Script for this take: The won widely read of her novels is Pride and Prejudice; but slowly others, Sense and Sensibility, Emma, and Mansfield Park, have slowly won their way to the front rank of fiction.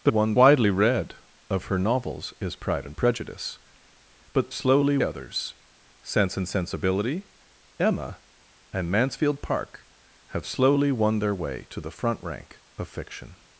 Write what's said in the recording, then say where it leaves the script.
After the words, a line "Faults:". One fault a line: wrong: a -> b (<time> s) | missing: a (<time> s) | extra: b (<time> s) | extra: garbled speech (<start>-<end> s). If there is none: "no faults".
The won widely read of her novels is Pride and Prejudice; but slowly others, Sense and Sensibility, Emma, and Mansfield Park, have slowly won their way to the front rank of fiction.
Faults:
no faults